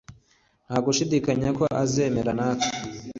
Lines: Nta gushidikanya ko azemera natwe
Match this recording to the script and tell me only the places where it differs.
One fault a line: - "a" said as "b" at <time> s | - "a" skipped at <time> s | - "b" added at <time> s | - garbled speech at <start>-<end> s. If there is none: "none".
none